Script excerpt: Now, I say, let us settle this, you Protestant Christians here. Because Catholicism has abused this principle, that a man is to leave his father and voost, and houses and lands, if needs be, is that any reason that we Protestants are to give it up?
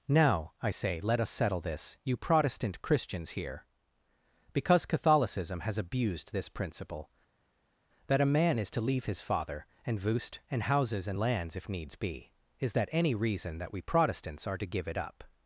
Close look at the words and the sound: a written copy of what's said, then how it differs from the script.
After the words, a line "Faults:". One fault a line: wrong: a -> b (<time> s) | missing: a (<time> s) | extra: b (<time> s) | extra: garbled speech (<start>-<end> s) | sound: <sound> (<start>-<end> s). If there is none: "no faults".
Now, I say, let us settle this, you Protestant Christians here. Because Catholicism has abused this principle, that a man is to leave his father and voost, and houses and lands, if needs be, is that any reason that we Protestants are to give it up?
Faults:
no faults